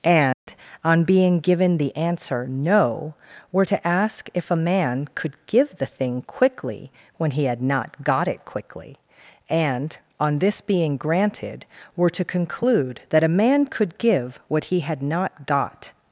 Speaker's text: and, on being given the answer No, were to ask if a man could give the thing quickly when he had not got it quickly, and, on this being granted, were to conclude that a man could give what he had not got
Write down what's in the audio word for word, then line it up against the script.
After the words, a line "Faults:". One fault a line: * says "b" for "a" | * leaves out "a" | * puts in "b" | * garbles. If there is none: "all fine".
and, on being given the answer No, were to ask if a man could give the thing quickly when he had not got it quickly, and, on this being granted, were to conclude that a man could give what he had not got
Faults:
all fine